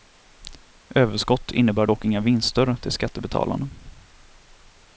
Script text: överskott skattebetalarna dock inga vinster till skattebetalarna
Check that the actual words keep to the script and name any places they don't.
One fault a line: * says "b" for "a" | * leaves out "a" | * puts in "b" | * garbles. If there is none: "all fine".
* says "innebär" for "skattebetalarna"